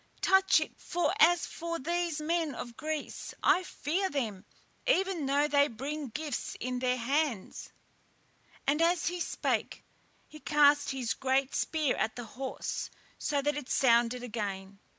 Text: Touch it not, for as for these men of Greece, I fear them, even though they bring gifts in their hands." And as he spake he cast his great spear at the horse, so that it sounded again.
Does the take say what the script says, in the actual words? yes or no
no